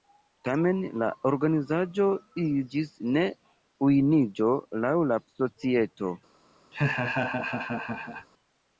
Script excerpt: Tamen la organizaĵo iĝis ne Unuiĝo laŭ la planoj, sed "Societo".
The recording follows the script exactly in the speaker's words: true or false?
false